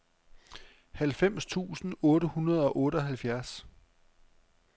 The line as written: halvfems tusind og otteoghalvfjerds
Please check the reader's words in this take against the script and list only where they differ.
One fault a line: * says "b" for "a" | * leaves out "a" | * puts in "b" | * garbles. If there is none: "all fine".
* puts in "otte hundrede"